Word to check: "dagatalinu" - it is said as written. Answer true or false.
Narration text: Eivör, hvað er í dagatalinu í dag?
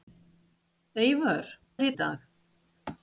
false